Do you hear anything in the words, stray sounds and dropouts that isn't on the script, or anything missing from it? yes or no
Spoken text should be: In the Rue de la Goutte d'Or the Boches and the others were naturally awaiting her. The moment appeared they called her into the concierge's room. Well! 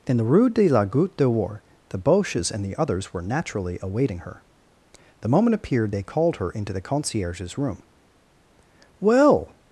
no